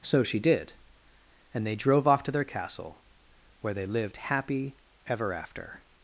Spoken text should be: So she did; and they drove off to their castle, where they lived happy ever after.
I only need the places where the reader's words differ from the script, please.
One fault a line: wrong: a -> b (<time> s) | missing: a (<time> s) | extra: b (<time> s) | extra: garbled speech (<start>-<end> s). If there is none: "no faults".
no faults